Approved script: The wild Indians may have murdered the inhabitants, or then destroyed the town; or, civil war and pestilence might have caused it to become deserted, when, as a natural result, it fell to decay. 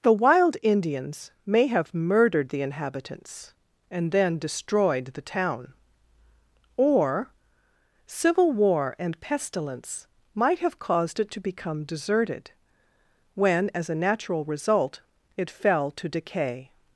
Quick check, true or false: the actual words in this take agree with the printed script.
false